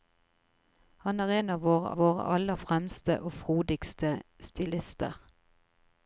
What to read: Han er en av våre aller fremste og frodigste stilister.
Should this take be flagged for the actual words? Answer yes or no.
yes